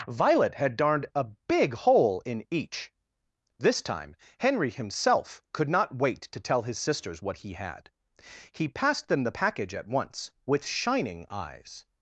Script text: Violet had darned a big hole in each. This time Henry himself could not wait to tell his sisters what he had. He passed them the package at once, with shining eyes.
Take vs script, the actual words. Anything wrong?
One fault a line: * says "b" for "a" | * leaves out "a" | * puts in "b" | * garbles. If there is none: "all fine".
all fine